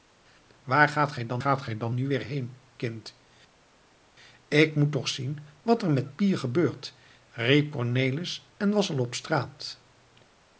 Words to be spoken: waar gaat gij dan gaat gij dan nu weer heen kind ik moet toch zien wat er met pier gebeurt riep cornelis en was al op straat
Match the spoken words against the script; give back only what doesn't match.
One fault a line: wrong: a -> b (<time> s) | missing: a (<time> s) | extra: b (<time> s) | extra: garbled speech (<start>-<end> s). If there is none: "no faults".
no faults